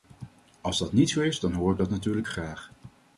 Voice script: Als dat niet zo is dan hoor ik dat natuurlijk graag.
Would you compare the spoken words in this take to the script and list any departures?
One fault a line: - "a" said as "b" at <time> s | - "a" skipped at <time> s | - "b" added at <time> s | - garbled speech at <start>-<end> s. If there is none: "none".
none